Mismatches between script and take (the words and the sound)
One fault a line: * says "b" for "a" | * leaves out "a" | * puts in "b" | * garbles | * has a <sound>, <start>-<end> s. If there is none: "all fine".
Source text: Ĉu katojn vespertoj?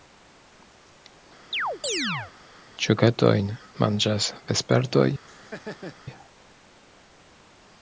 * has a chirp, 1.5-2.3 s
* puts in "manĝas"
* has a laugh, 5.3-6.0 s